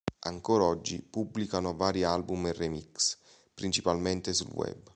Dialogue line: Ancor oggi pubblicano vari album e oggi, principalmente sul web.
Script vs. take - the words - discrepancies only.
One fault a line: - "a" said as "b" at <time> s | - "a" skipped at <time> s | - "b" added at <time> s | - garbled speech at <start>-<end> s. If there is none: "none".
- "oggi" said as "remix" at 2.5 s